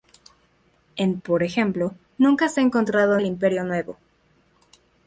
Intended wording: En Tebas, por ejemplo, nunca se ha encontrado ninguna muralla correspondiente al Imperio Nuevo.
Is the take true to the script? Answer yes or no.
no